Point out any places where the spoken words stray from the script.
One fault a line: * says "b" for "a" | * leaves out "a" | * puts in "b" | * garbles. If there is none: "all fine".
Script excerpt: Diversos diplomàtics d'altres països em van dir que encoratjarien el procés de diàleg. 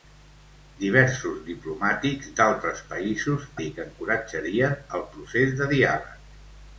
* leaves out "em van"